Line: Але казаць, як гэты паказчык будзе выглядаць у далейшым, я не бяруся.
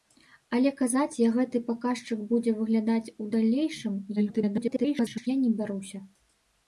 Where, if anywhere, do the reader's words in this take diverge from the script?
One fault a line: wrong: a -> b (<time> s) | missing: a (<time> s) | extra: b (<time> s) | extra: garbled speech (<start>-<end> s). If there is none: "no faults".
extra: garbled speech (4.2-5.3 s)